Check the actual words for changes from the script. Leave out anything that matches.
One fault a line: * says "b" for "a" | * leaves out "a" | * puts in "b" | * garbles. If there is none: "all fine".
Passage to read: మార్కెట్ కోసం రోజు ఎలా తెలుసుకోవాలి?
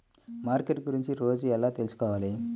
* says "గురించి" for "కోసం"